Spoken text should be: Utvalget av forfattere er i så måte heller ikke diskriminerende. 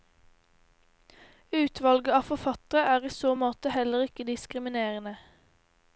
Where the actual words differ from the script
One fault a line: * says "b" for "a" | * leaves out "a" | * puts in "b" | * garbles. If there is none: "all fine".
all fine